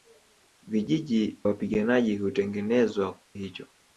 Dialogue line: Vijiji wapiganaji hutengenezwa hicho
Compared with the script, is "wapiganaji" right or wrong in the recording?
right